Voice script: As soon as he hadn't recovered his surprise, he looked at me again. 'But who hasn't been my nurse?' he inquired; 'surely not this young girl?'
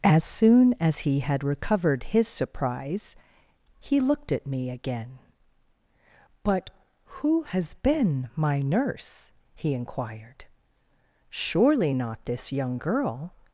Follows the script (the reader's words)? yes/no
no